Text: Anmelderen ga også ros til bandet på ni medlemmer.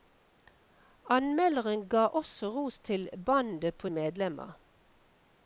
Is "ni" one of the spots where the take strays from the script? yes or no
yes